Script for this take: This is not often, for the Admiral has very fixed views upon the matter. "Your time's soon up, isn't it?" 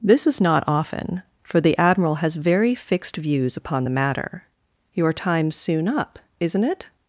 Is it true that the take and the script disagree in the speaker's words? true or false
false